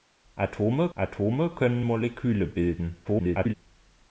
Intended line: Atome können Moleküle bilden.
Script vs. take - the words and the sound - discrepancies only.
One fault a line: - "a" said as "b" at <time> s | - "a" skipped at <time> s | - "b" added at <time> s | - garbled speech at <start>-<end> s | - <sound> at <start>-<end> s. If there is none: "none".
- "atome" added at 0.9 s
- garbled speech at 3.0-3.5 s